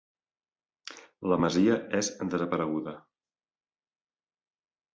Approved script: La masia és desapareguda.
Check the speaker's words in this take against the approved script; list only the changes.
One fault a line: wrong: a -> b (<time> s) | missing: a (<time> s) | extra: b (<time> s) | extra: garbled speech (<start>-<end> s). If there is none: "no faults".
no faults